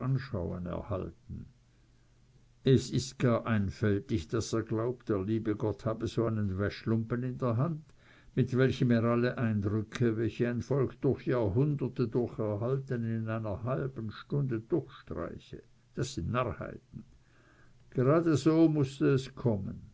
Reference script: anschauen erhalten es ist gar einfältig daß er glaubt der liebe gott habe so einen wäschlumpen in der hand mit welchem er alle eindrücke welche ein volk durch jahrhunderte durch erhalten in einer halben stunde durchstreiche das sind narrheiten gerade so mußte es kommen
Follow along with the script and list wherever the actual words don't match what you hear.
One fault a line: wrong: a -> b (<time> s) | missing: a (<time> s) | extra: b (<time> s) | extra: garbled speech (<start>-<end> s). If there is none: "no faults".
no faults